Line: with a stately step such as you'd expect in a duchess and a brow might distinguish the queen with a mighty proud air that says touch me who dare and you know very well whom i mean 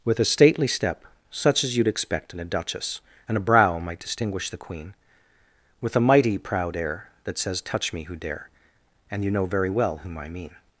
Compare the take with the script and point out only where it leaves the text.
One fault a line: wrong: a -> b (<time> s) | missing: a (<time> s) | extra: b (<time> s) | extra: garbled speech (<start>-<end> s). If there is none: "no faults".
no faults